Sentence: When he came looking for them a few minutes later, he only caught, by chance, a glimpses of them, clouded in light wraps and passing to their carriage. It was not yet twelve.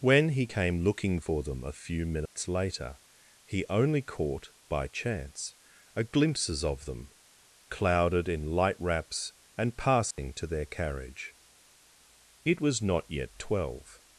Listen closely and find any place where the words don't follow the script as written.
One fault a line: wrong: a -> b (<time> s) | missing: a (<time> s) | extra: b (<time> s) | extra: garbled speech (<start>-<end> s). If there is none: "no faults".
no faults